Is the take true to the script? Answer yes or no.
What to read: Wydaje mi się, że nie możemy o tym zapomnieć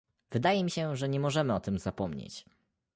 yes